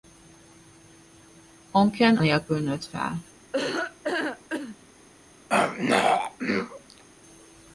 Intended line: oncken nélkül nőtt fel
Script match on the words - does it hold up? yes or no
yes